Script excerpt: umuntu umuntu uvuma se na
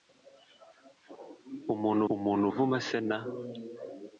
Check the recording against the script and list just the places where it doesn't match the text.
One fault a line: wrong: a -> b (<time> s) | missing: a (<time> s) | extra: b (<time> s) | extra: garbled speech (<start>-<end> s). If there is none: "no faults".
no faults